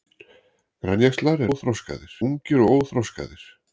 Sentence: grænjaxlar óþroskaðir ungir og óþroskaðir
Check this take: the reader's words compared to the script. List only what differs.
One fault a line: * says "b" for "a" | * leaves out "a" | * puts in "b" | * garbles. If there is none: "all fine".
all fine